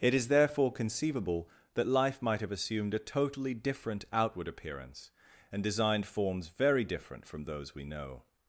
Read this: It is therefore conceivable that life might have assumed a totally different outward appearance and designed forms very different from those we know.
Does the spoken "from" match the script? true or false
true